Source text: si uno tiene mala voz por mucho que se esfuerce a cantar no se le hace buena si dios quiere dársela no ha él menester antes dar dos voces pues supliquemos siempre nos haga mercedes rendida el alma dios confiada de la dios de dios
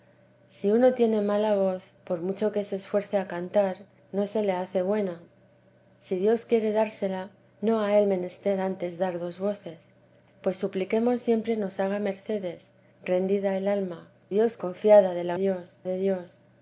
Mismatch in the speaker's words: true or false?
false